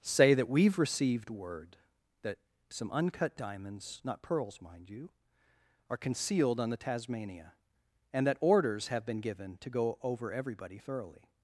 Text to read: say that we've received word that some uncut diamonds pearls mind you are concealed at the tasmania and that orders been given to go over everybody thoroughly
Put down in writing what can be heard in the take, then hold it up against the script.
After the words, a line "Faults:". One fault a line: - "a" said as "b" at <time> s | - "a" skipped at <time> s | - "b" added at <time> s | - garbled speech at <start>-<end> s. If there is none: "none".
say that we've received word that some uncut diamonds not pearls mind you are concealed on the tasmania and that orders have been given to go over everybody thoroughly
Faults:
- "not" added at 4.0 s
- "at" said as "on" at 6.6 s
- "have" added at 8.9 s